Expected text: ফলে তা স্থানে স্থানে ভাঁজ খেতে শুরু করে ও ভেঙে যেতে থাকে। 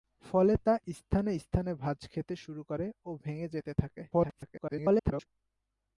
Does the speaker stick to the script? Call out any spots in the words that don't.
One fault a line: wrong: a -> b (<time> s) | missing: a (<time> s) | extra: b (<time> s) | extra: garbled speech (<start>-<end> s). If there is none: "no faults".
extra: garbled speech (4.1-5.3 s)